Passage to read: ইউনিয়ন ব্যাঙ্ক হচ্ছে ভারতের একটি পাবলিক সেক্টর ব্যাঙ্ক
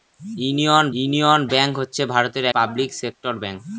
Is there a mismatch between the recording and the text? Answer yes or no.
yes